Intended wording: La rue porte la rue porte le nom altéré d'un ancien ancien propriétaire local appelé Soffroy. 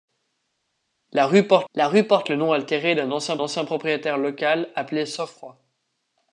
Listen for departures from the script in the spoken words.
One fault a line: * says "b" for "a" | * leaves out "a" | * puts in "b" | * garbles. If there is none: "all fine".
all fine